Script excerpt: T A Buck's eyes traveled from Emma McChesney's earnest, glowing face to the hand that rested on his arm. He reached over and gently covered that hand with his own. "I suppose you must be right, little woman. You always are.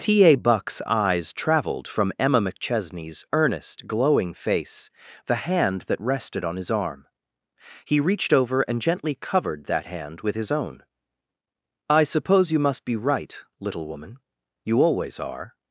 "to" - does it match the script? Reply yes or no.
no